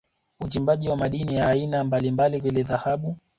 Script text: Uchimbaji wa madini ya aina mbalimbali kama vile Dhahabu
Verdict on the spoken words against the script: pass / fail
fail